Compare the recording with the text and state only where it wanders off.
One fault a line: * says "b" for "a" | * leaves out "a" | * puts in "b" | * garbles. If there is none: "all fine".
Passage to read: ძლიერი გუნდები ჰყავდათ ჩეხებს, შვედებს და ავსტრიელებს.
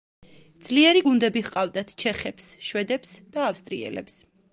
all fine